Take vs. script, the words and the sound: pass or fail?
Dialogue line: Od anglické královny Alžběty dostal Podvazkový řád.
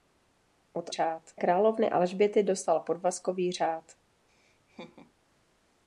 fail